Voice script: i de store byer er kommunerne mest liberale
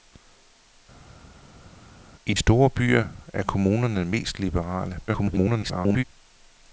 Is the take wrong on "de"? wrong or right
wrong